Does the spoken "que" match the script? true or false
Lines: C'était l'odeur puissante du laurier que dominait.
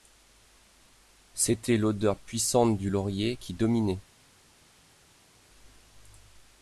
false